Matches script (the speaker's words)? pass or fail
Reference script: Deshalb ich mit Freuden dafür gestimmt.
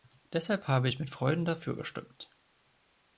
fail